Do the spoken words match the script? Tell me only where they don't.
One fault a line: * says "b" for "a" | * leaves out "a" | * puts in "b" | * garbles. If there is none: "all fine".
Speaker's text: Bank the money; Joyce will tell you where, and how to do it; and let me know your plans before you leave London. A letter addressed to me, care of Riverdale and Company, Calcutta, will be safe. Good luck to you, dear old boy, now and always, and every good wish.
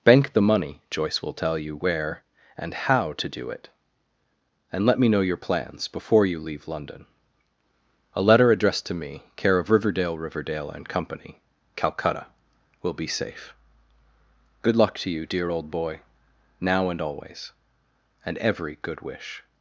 * puts in "Riverdale"